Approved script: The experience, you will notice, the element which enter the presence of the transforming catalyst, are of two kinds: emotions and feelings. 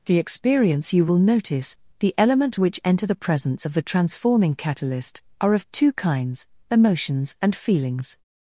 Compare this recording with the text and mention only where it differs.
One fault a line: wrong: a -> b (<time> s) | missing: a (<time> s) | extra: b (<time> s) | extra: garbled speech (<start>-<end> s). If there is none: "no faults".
no faults